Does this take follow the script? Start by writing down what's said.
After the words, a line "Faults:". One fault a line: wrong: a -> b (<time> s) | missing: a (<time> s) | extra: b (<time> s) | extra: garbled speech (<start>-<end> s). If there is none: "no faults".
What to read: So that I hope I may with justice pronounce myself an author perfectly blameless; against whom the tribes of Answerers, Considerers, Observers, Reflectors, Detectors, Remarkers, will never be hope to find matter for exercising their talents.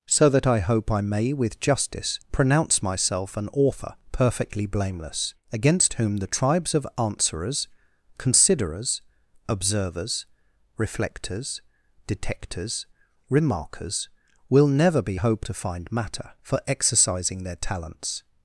So that I hope I may with justice pronounce myself an author perfectly blameless; against whom the tribes of Answerers, Considerers, Observers, Reflectors, Detectors, Remarkers, will never be hope to find matter for exercising their talents.
Faults:
no faults